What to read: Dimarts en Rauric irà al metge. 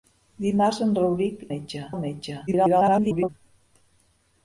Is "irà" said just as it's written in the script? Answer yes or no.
no